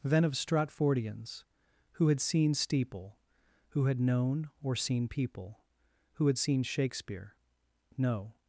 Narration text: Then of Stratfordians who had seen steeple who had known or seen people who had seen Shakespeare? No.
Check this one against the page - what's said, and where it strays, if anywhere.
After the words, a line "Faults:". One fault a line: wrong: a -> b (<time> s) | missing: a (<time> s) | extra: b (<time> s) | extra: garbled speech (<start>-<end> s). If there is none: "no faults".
Then of Stratfordians who had seen steeple who had known or seen people who had seen Shakespeare? No.
Faults:
no faults